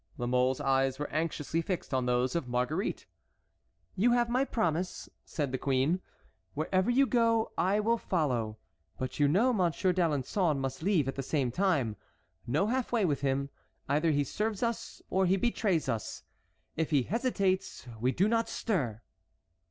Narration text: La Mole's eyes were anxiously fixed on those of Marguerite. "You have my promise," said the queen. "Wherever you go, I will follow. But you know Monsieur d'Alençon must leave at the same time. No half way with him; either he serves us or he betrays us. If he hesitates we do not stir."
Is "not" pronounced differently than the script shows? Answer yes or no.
no